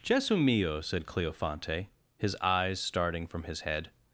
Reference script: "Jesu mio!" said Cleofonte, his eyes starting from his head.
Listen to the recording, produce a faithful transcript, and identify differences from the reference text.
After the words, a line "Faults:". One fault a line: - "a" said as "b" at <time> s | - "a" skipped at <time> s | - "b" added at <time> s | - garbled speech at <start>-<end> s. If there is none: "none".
"Jesu mio!" said Cleofonte, his eyes starting from his head.
Faults:
none